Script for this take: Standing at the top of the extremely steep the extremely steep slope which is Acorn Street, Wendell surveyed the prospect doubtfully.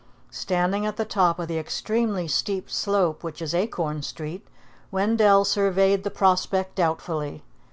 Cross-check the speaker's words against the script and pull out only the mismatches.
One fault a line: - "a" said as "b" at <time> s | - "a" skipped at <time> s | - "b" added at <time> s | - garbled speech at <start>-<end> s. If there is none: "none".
- "the extremely steep" skipped at 2.7 s